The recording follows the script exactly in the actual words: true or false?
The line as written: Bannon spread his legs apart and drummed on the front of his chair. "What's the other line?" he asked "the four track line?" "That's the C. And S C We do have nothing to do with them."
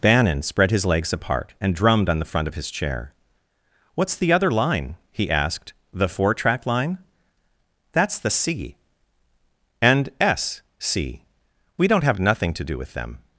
false